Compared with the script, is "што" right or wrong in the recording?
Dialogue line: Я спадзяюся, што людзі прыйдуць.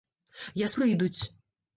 wrong